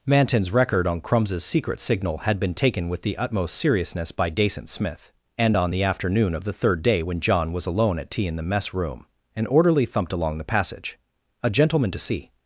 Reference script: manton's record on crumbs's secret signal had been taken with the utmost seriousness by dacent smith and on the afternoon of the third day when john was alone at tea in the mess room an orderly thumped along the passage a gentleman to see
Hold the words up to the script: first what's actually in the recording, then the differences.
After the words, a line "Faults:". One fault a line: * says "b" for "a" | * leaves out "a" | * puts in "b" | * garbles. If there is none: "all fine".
manton's record on crumbs's secret signal had been taken with the utmost seriousness by dacent smith and on the afternoon of the third day when john was alone at tea in the mess room an orderly thumped along the passage a gentleman to see
Faults:
all fine